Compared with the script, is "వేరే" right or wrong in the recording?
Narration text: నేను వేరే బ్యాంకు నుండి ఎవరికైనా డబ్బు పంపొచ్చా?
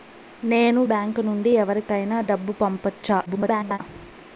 wrong